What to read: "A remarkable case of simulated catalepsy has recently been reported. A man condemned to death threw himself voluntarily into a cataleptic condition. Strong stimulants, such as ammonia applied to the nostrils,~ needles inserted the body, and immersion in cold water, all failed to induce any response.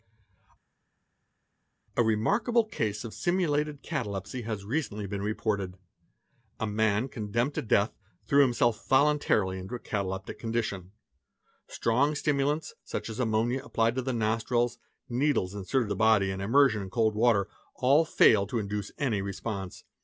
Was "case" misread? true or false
false